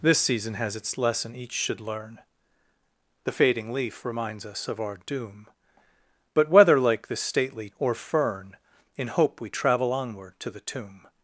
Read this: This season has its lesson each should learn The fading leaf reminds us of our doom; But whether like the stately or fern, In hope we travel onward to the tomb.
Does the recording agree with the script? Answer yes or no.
yes